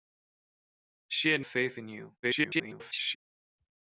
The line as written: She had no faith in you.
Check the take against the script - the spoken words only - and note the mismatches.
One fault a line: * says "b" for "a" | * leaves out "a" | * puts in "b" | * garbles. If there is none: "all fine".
* leaves out "no"
* garbles